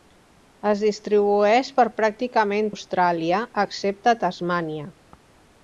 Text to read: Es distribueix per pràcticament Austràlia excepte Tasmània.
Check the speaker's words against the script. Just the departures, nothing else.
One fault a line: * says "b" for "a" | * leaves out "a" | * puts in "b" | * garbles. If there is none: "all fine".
all fine